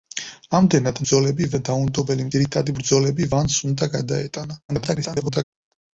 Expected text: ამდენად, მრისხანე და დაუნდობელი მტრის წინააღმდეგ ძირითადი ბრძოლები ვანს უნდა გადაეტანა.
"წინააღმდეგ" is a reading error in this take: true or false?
true